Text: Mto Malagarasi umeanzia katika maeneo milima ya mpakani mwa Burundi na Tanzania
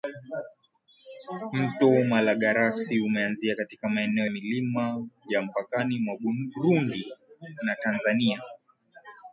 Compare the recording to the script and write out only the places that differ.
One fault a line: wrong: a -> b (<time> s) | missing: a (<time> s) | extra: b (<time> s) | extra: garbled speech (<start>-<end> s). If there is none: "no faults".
no faults